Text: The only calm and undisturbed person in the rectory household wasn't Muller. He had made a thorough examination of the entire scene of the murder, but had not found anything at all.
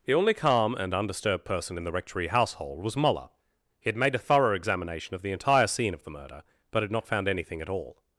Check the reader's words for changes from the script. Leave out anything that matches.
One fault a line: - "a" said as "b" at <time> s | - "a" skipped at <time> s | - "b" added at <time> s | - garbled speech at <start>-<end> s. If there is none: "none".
- "wasn't" said as "was" at 2.8 s